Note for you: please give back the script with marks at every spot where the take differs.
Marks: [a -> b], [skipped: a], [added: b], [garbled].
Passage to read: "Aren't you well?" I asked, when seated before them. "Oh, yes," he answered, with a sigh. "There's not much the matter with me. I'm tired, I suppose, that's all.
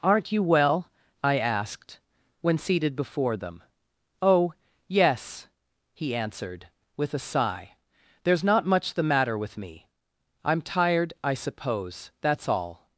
"Aren't you well?" I asked, when seated before them. "Oh, yes," he answered, with a sigh. "There's not much the matter with me. I'm tired, I suppose, that's all.